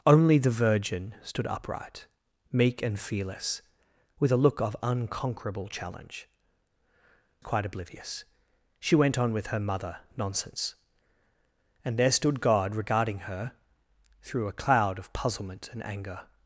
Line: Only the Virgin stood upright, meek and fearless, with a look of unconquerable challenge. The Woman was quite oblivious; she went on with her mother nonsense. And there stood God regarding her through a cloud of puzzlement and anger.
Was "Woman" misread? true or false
true